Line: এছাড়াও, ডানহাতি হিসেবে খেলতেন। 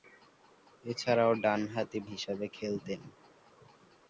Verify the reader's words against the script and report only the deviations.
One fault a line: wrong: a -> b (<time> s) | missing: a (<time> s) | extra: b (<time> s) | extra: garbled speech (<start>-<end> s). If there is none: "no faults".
no faults